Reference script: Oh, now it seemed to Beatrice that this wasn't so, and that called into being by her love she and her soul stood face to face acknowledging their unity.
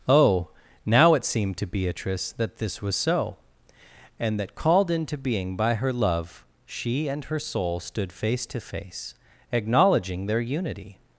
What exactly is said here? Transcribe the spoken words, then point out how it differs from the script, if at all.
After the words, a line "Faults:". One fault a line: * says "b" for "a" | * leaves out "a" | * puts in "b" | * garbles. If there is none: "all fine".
Oh, now it seemed to Beatrice that this was so, and that called into being by her love she and her soul stood face to face acknowledging their unity.
Faults:
* says "was" for "wasn't"